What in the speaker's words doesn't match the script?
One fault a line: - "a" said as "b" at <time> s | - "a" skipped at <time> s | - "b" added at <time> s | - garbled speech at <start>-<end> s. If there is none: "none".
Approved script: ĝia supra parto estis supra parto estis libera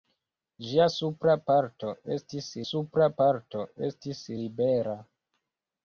none